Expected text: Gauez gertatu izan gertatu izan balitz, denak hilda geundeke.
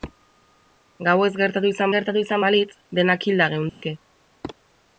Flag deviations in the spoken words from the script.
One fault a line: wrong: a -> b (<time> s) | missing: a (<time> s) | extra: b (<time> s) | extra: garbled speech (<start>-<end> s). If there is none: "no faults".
no faults